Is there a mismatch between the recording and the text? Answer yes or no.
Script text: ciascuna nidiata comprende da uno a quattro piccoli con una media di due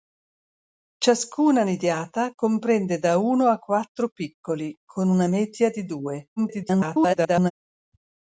yes